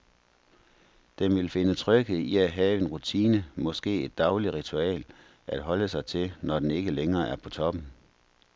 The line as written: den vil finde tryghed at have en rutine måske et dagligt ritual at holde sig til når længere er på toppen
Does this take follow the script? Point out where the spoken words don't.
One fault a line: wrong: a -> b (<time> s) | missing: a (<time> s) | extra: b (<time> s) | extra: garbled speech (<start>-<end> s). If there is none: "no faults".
extra: i (2.2 s)
extra: den ikke (6.6 s)